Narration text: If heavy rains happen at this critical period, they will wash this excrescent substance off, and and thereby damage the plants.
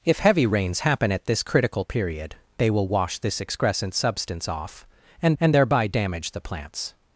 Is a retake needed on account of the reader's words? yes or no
no